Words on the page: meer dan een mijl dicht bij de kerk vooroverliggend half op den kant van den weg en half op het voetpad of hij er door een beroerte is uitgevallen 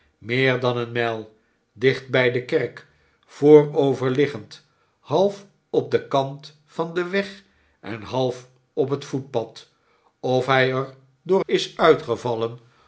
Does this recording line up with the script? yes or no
no